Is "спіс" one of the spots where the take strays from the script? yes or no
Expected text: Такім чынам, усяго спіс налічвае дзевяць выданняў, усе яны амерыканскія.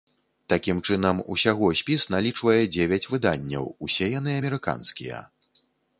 no